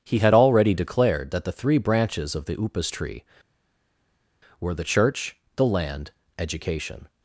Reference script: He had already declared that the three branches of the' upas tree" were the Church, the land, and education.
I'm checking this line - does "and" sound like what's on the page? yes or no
no